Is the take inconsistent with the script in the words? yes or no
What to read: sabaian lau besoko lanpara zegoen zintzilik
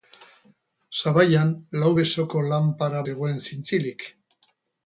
no